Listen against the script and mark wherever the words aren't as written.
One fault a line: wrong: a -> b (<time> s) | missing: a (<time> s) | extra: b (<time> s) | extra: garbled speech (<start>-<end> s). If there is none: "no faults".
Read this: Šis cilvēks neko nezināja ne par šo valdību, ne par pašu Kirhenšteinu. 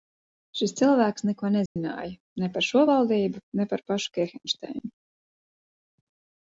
no faults